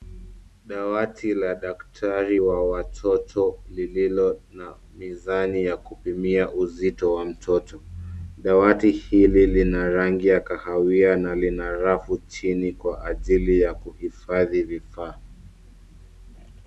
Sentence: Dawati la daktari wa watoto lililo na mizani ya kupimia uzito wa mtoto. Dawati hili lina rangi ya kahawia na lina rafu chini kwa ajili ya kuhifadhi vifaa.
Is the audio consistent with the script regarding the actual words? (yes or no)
yes